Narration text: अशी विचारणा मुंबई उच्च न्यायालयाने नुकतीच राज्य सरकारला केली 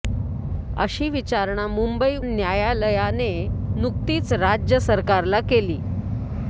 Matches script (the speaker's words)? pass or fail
fail